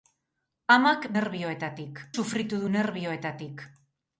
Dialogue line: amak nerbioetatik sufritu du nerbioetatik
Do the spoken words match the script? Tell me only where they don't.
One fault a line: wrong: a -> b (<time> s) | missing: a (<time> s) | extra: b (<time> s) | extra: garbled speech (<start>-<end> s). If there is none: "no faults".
no faults